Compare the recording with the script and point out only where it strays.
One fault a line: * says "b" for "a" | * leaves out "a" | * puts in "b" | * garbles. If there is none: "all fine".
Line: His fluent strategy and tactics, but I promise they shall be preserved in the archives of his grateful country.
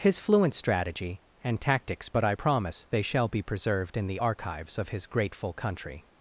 all fine